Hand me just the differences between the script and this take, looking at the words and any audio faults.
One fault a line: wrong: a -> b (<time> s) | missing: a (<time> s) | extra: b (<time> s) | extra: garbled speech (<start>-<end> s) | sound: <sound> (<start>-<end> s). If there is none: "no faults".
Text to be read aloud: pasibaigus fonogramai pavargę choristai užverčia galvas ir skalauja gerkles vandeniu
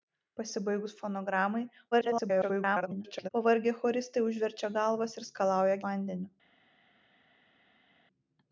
extra: garbled speech (1.9-3.3 s)
missing: gerkles (5.8 s)